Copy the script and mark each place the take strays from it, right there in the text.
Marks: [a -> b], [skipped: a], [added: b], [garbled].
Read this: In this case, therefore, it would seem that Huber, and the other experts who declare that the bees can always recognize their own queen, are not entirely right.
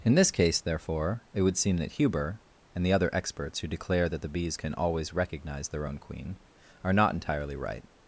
In this case, therefore, it would seem that Huber, and the other experts who declare that the bees can always recognize their own queen, are not entirely right.